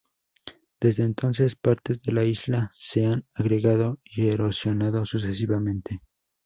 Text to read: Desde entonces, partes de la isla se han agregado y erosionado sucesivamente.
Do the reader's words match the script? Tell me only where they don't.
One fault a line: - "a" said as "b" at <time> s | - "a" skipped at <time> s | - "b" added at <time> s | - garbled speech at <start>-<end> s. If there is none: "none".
none